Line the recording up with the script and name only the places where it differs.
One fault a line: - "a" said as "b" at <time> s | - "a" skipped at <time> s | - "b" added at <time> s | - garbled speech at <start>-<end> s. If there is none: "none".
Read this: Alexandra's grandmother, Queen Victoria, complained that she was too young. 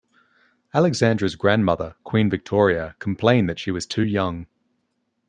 none